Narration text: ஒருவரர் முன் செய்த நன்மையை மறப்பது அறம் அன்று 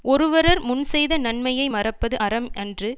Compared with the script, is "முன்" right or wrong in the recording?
right